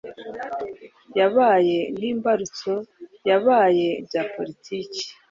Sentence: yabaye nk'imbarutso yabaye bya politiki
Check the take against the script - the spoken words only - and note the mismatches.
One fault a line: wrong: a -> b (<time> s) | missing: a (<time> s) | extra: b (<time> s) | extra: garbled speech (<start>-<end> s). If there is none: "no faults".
no faults